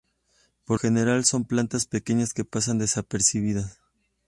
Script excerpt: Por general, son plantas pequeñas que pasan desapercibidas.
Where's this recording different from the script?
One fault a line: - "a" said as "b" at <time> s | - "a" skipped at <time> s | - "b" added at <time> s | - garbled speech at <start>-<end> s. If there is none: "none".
none